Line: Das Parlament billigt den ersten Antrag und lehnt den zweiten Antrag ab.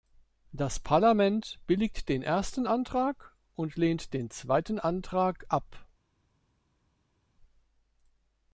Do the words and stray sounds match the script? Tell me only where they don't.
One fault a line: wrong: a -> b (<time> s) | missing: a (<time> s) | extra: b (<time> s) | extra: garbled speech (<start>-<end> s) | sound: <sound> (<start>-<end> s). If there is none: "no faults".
no faults